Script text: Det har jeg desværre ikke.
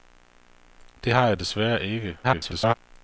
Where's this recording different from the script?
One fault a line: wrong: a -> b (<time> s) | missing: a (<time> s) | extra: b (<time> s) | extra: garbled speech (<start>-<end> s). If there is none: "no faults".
extra: garbled speech (2.2-2.7 s)